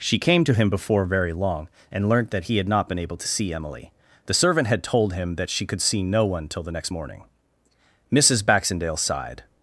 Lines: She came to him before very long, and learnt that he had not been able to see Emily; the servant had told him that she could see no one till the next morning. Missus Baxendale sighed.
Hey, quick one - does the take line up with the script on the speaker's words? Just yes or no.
yes